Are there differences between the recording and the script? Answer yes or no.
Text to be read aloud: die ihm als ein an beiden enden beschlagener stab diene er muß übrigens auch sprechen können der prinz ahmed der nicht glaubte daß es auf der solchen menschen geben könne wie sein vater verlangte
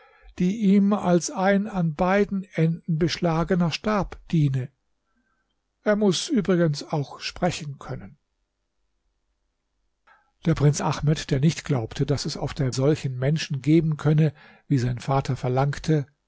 no